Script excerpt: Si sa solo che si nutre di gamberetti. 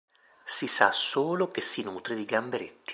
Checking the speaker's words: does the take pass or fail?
pass